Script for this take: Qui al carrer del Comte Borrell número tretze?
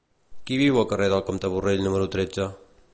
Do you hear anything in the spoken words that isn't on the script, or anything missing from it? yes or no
yes